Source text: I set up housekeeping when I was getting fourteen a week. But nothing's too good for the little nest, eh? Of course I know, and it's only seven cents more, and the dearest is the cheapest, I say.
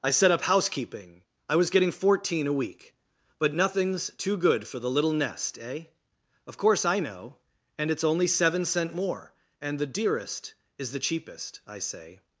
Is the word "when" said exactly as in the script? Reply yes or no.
no